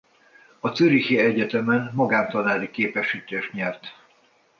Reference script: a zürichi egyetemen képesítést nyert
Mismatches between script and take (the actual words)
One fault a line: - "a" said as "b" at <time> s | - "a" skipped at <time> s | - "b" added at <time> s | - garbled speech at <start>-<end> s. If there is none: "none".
- "magántanári" added at 1.9 s